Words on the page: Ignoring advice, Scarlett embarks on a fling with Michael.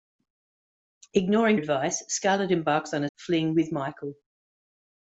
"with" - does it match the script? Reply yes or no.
yes